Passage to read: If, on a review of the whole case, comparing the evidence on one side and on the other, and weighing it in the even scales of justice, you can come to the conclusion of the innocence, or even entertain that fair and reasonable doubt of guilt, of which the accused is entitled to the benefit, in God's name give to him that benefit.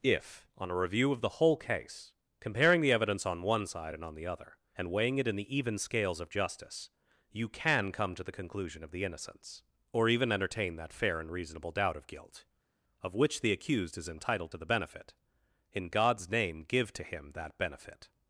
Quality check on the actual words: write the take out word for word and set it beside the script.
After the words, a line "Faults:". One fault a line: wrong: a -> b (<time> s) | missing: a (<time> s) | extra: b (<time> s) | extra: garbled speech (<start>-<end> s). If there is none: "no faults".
If, on a review of the whole case, comparing the evidence on one side and on the other, and weighing it in the even scales of justice, you can come to the conclusion of the innocence, or even entertain that fair and reasonable doubt of guilt, of which the accused is entitled to the benefit, in God's name give to him that benefit.
Faults:
no faults